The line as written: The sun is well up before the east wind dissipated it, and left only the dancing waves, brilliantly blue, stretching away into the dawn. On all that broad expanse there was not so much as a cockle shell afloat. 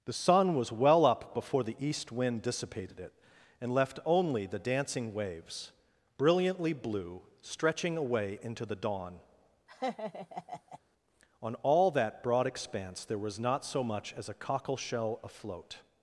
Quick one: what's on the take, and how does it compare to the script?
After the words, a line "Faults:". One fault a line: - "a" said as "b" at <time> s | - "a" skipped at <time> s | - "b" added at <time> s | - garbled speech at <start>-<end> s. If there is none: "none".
The sun was well up before the east wind dissipated it, and left only the dancing waves, brilliantly blue, stretching away into the dawn. On all that broad expanse there was not so much as a cockle shell afloat.
Faults:
- "is" said as "was" at 0.6 s